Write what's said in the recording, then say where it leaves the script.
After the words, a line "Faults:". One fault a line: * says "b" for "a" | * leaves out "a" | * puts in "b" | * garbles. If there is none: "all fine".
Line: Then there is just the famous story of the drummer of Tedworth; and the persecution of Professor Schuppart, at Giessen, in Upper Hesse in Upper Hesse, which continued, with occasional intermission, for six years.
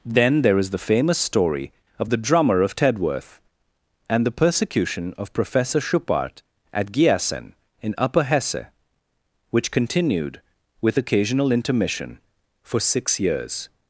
Then there is the famous story of the drummer of Tedworth; and the persecution of Professor Schuppart, at Giessen, in Upper Hesse, which continued, with occasional intermission, for six years.
Faults:
* leaves out "just"
* leaves out "in Upper Hesse"